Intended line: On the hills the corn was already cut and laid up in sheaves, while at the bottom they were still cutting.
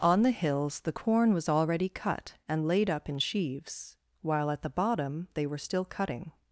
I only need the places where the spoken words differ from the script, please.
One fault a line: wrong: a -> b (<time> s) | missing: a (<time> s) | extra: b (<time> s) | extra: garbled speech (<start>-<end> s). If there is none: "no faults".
no faults